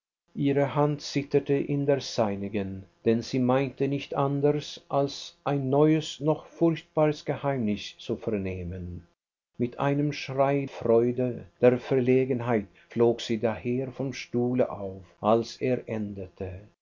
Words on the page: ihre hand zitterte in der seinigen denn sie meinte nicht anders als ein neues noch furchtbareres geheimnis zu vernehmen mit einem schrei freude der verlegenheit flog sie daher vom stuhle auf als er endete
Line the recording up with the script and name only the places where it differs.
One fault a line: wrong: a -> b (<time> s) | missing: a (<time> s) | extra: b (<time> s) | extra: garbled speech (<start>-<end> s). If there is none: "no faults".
no faults